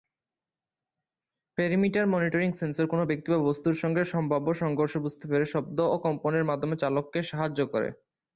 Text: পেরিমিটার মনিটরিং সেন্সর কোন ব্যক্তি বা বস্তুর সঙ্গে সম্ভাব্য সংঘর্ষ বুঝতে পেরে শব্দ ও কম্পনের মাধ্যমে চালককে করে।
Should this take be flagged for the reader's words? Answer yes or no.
yes